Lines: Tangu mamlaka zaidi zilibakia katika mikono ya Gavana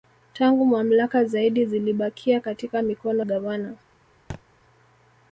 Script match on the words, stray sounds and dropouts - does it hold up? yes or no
no